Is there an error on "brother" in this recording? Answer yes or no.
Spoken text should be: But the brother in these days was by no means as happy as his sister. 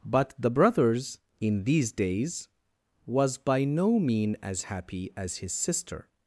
yes